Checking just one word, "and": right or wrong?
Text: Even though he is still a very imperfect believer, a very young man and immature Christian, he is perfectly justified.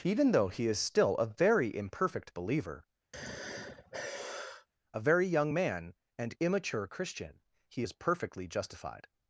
right